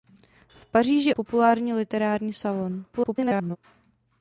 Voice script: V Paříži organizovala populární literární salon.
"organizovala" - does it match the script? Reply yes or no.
no